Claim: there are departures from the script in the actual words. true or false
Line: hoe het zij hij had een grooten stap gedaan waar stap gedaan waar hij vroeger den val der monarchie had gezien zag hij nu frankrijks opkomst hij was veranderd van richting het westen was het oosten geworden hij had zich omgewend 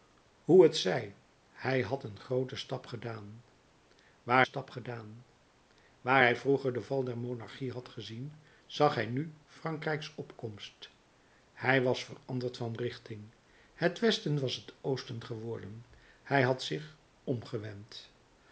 false